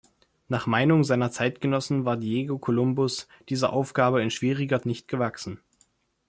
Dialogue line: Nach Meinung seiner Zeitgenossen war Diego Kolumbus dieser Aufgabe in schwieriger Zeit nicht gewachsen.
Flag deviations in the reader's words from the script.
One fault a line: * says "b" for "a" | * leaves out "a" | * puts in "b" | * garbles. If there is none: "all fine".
* leaves out "Zeit"